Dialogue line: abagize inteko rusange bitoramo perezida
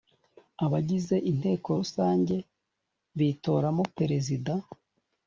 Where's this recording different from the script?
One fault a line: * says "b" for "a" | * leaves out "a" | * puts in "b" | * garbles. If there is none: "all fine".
all fine